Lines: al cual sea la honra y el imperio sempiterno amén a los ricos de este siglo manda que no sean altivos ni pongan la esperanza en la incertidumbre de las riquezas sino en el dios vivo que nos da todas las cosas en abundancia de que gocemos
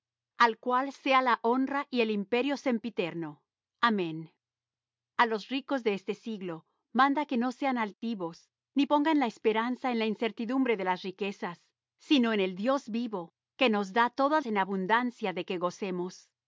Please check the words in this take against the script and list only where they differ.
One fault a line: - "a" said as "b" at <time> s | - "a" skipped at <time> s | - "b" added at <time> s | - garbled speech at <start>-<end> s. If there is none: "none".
- "las cosas" skipped at 14.4 s